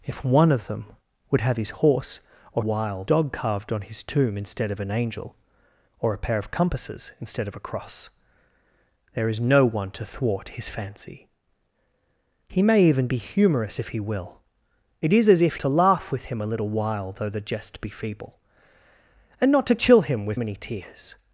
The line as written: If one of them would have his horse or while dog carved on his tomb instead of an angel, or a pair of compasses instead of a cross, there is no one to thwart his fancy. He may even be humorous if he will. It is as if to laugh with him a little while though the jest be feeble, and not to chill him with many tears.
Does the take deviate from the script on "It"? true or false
false